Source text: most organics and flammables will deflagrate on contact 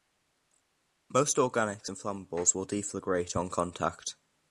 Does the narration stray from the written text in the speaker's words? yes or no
no